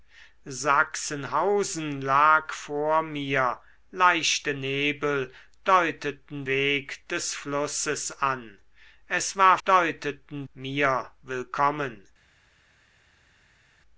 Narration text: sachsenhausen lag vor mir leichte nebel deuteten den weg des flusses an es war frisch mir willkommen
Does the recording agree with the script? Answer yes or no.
no